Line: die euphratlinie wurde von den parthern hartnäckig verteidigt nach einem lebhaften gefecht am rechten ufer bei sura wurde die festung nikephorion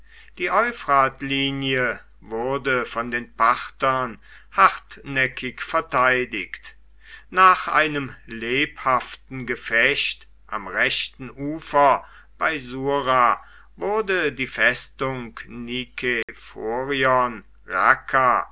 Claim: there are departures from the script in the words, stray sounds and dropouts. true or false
true